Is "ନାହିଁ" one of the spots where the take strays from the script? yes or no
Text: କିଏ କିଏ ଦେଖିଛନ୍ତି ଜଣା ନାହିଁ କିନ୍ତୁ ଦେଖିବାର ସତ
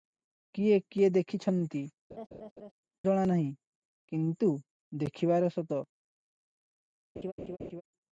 no